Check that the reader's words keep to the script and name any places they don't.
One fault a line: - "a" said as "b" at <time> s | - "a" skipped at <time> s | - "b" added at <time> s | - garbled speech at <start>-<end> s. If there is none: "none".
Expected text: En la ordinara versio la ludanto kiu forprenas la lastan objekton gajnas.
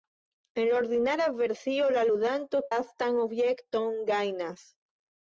- "kiu forprenas la" skipped at 2.6 s